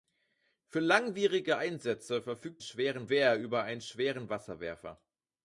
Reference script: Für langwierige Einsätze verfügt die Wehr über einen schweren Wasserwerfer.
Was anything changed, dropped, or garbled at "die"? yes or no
yes